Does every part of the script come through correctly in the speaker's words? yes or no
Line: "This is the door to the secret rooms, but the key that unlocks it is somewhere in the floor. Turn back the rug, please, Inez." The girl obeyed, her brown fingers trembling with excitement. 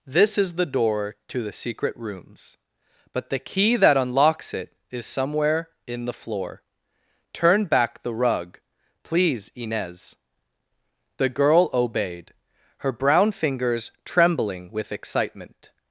yes